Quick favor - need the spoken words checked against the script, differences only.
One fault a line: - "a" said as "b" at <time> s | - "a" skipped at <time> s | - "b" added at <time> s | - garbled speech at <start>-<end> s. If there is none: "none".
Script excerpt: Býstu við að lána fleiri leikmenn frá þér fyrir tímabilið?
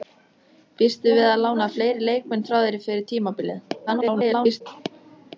- garbled speech at 3.9-4.6 s